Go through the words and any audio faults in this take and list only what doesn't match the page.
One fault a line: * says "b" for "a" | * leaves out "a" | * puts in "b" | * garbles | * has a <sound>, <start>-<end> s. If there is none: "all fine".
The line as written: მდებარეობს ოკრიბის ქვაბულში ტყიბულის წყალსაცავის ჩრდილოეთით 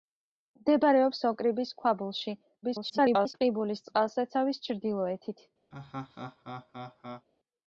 * garbles
* has a laugh, 5.7-7.3 s